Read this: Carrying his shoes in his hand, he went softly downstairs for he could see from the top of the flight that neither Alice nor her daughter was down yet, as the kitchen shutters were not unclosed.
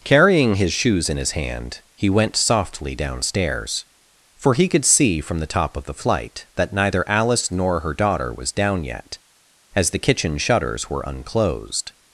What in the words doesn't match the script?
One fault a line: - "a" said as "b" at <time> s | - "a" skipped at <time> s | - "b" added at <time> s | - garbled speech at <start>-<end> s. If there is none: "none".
- "not" skipped at 11.0 s